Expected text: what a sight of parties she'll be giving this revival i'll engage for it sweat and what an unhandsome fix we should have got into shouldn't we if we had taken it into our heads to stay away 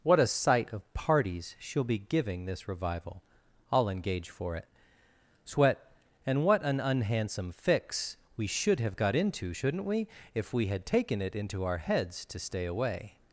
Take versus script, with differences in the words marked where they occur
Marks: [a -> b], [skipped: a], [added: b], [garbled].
what a sight of parties she'll be giving this revival i'll engage for it sweat and what an unhandsome fix we should have got into shouldn't we if we had taken it into our heads to stay away